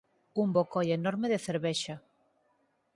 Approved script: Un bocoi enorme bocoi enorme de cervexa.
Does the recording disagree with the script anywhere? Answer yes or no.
yes